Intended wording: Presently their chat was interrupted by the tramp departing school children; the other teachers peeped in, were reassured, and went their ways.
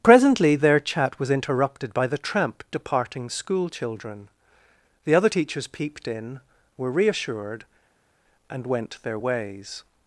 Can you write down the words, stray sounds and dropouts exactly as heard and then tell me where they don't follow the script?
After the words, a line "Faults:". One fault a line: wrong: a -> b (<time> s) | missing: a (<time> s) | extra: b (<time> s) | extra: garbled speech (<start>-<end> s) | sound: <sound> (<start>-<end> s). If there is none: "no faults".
Presently their chat was interrupted by the tramp departing school children; the other teachers peeped in, were reassured, and went their ways.
Faults:
no faults